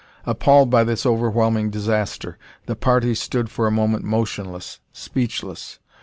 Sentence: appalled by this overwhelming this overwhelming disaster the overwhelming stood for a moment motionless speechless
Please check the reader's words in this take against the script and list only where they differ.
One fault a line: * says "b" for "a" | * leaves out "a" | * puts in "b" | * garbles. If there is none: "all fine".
* leaves out "this overwhelming"
* says "party" for "overwhelming"